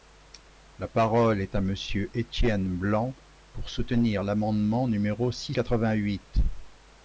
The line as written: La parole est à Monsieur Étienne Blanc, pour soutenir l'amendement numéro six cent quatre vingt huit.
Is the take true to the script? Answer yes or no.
no